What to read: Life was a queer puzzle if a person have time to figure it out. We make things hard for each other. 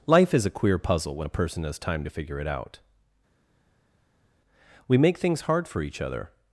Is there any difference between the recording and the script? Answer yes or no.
yes